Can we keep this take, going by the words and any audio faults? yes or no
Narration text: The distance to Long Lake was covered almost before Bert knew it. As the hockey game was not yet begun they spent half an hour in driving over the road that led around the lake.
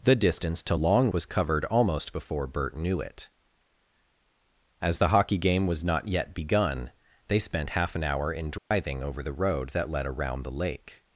no